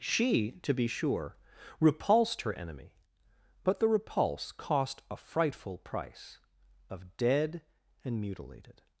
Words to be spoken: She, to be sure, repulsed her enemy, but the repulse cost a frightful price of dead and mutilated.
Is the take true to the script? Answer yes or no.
yes